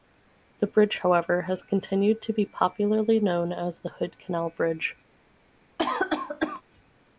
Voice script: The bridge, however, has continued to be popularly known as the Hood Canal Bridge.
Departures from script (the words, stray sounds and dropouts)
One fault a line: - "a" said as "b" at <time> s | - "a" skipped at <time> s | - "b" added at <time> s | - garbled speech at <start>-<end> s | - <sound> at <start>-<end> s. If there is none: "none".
- cough at 5.8-6.6 s